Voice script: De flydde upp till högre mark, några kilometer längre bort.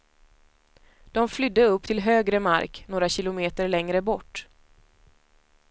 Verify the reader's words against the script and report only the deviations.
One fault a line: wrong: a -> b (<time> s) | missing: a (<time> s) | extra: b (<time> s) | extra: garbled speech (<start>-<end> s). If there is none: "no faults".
no faults